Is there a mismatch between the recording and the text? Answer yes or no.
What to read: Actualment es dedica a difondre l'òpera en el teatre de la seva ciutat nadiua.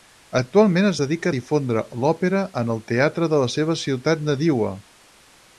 no